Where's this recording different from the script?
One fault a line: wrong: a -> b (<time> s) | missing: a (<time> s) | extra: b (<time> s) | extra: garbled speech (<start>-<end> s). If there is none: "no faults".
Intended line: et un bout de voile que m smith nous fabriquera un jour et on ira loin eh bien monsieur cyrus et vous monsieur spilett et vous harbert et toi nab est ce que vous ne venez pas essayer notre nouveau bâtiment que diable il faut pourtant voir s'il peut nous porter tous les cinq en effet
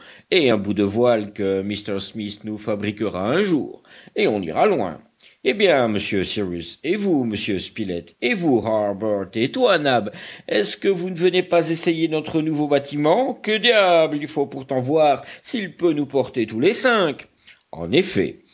no faults